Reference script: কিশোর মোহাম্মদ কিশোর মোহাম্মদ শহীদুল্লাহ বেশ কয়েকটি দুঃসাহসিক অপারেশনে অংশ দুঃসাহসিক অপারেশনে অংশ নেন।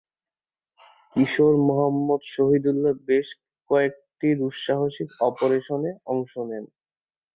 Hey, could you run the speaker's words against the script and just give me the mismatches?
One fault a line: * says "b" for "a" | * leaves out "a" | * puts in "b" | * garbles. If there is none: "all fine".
* leaves out "কিশোর মোহাম্মদ"
* leaves out "দুঃসাহসিক অপারেশনে অংশ"